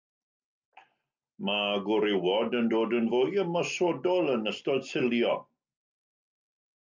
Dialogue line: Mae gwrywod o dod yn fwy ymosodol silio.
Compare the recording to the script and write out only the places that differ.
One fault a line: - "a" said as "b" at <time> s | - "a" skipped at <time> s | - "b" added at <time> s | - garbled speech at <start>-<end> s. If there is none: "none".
- "o" said as "yn" at 2.6 s
- "yn ystod" added at 4.4 s